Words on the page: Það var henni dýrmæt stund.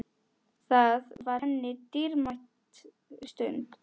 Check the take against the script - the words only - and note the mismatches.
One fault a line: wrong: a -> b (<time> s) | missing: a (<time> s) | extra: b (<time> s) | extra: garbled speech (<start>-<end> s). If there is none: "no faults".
no faults